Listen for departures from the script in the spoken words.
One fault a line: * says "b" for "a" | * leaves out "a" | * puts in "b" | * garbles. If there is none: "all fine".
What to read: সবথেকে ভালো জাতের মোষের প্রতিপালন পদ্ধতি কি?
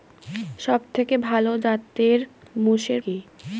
* leaves out "প্রতিপালন পদ্ধতি"